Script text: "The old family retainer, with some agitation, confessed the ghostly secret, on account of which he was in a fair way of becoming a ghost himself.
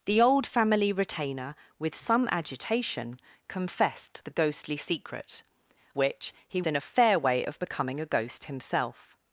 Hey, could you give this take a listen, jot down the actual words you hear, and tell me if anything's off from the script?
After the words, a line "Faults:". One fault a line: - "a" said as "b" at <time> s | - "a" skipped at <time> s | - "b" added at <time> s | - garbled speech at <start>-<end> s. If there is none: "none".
"The old family retainer, with some agitation, confessed the ghostly secret, which he in a fair way of becoming a ghost himself.
Faults:
- "on account of" skipped at 5.4 s
- "was" skipped at 6.6 s